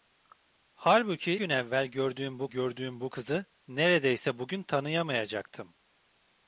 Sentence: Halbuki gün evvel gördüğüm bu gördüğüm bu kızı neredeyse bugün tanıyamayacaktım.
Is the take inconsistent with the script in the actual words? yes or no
no